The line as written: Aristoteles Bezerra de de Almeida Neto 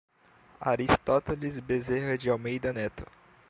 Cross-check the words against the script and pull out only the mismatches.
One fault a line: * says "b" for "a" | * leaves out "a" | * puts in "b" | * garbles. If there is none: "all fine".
* leaves out "de"